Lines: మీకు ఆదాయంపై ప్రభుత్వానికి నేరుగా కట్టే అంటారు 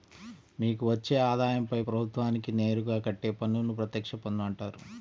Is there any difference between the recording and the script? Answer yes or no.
yes